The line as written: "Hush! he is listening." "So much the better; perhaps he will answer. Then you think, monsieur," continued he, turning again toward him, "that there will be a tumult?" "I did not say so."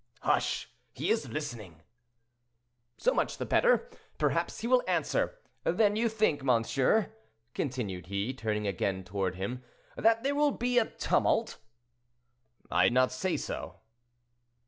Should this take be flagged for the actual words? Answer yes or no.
yes